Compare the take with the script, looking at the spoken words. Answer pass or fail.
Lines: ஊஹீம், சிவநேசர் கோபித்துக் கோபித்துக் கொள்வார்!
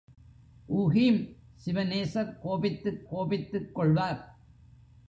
pass